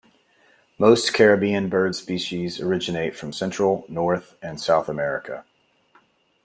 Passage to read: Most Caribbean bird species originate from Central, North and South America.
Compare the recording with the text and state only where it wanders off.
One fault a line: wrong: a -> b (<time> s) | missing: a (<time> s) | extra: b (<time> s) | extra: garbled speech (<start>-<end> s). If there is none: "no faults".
no faults